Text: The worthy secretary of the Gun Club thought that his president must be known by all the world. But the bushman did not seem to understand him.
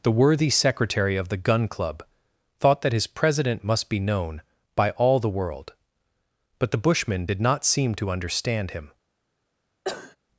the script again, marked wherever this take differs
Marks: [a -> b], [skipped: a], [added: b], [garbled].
The worthy secretary of the Gun Club thought that his president must be known by all the world. But the bushman did not seem to understand him.